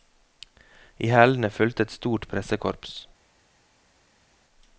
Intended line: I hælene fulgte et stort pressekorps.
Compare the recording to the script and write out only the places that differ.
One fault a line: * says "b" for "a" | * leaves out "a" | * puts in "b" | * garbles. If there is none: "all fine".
all fine